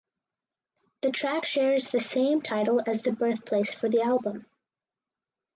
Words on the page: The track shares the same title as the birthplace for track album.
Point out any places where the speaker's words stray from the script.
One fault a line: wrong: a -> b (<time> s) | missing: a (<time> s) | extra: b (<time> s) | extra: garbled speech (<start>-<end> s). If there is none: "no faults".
wrong: track -> the (3.9 s)